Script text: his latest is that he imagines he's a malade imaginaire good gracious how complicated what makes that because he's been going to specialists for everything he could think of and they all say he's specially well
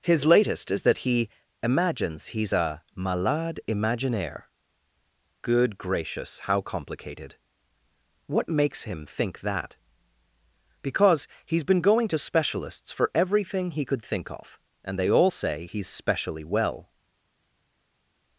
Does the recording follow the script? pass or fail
fail